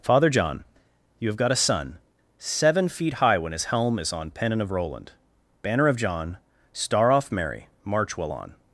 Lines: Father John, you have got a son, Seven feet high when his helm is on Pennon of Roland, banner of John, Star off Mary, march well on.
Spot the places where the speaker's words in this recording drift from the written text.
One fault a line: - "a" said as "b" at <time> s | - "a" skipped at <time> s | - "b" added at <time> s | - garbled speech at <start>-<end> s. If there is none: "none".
none